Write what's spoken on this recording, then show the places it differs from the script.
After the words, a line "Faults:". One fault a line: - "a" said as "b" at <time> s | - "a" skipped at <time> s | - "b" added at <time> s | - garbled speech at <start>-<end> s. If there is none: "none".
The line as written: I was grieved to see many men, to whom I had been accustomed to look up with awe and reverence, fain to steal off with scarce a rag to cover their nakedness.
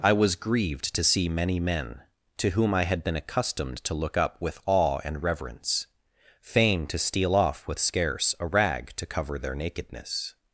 I was grieved to see many men, to whom I had been accustomed to look up with awe and reverence, fain to steal off with scarce a rag to cover their nakedness.
Faults:
none